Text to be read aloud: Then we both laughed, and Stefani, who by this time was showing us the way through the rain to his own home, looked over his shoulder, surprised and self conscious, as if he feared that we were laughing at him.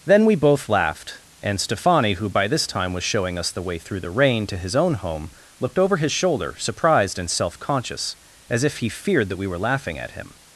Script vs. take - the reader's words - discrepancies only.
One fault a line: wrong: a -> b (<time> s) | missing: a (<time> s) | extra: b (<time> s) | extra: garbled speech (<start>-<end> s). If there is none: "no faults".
no faults